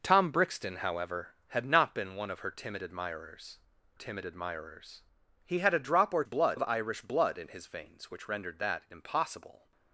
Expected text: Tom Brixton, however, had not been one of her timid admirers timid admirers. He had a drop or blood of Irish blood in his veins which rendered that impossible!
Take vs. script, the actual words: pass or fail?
pass